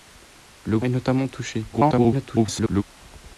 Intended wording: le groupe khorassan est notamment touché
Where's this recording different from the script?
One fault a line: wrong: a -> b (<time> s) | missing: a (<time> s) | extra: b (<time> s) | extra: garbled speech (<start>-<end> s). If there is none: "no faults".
missing: groupe khorassan (0.8 s)
extra: garbled speech (1.7-2.8 s)